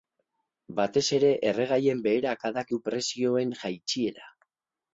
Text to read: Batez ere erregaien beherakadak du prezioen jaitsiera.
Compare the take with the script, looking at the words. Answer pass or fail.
pass